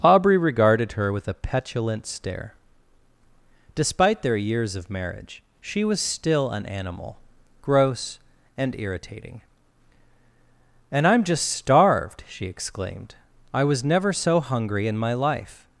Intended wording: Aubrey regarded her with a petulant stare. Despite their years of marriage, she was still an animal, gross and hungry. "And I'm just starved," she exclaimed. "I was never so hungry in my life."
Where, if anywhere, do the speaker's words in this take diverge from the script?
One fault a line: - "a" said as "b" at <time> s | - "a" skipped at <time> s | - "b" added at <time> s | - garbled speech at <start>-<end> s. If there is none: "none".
- "hungry" said as "irritating" at 8.8 s